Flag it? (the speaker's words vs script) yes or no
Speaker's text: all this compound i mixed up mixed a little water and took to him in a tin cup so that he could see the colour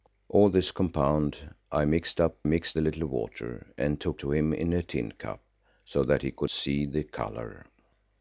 no